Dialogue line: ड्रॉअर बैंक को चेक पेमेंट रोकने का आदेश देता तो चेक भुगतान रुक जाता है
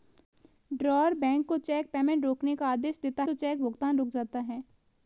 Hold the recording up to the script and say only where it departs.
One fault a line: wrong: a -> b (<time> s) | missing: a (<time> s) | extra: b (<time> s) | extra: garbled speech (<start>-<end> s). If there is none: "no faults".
no faults